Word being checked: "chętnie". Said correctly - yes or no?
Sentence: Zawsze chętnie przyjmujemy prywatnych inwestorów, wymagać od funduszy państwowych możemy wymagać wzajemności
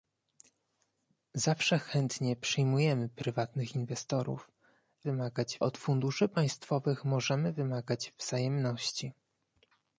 yes